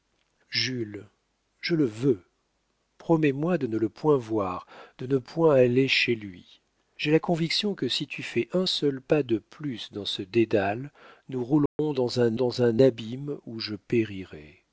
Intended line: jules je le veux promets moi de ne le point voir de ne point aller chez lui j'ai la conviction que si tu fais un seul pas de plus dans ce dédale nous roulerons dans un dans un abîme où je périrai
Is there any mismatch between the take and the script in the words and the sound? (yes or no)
yes